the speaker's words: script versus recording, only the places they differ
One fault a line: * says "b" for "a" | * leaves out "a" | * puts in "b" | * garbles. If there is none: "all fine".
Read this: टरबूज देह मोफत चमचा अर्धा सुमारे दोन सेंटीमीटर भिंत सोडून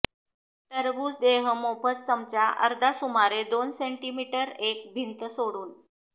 * puts in "एक"